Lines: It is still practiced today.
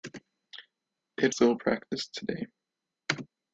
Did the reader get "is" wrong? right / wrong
wrong